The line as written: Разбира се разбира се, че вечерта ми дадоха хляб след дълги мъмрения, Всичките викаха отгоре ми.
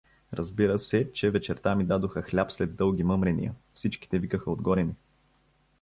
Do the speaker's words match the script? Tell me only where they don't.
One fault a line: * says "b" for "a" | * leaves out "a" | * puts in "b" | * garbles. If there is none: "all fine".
* leaves out "разбира се"